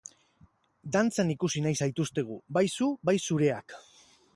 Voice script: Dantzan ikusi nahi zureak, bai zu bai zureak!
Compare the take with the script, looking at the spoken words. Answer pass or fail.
fail